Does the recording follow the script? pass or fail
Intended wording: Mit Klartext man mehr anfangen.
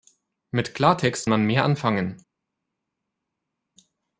pass